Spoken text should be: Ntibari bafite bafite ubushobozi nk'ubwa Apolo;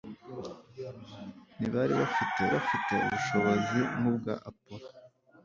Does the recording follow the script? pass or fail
pass